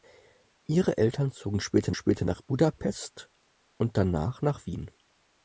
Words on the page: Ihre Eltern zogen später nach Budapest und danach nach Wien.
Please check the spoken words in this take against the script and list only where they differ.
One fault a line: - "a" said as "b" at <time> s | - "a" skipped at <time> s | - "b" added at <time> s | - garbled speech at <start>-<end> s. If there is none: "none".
- "später" added at 1.9 s